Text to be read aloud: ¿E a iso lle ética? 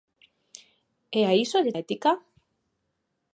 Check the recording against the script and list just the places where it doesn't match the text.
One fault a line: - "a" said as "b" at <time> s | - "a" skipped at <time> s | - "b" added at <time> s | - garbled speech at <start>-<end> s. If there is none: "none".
none